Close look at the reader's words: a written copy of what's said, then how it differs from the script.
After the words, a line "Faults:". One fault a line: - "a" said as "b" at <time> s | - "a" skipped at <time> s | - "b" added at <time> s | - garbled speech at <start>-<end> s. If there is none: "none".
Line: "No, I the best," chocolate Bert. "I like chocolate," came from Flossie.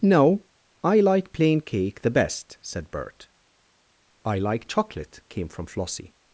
"No, I like plain cake the best," said Bert. "I like chocolate," came from Flossie.
Faults:
- "like plain cake" added at 1.0 s
- "chocolate" said as "said" at 2.6 s